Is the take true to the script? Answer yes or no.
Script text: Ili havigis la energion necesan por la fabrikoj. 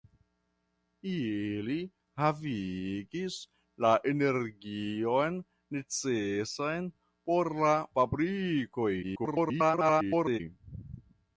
no